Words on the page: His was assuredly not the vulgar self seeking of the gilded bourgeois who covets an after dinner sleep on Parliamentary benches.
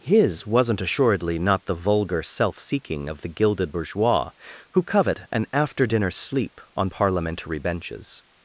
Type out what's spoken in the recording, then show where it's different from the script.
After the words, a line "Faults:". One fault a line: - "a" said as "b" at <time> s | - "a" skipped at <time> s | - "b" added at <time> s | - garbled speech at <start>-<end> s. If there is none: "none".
His wasn't assuredly not the vulgar self seeking of the gilded bourgeois who covet an after dinner sleep on Parliamentary benches.
Faults:
- "was" said as "wasn't" at 0.5 s
- "covets" said as "covet" at 4.8 s